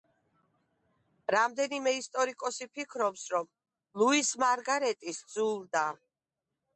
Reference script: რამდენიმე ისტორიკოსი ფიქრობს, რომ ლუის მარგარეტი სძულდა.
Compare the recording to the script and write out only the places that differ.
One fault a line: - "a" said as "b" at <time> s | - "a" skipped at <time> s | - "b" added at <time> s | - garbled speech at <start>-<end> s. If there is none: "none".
none